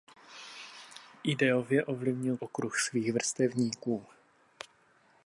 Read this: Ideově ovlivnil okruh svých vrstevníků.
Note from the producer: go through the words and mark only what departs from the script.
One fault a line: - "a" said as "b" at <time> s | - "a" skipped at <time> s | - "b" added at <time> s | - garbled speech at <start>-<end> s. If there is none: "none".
none